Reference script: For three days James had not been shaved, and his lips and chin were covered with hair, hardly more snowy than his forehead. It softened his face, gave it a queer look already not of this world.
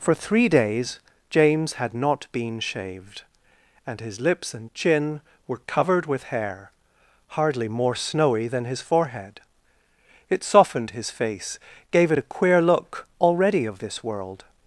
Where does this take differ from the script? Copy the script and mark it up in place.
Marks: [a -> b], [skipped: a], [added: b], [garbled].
For three days James had not been shaved, and his lips and chin were covered with hair, hardly more snowy than his forehead. It softened his face, gave it a queer look already [skipped: not] of this world.